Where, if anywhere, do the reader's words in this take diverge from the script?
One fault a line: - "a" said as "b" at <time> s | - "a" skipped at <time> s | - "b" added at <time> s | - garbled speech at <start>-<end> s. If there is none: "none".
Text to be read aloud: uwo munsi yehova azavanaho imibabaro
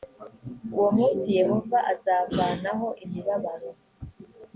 none